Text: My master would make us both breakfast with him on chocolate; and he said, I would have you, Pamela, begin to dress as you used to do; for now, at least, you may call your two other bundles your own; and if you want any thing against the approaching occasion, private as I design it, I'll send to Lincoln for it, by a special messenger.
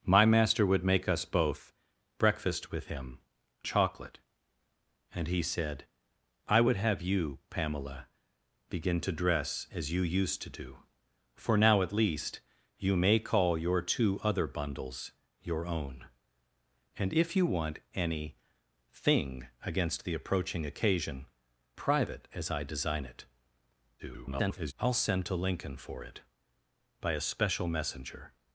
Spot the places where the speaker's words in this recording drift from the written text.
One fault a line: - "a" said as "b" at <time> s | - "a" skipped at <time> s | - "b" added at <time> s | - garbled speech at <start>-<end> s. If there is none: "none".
- "on" skipped at 3.2 s
- garbled speech at 24.0-24.7 s